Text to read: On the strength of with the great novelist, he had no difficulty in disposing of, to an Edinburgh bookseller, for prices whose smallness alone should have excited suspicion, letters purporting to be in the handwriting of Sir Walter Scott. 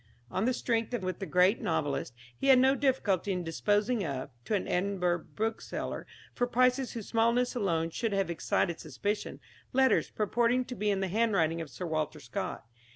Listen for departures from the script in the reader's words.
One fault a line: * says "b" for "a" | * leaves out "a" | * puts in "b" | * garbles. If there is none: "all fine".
all fine